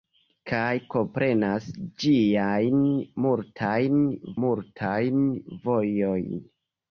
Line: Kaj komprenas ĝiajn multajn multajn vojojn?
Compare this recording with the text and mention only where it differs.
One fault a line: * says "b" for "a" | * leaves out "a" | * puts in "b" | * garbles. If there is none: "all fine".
all fine